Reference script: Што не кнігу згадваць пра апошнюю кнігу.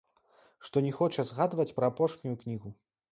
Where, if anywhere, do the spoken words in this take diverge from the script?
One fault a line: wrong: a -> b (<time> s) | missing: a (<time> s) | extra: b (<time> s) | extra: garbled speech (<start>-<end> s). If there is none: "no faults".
wrong: кнігу -> хоча (1.0 s)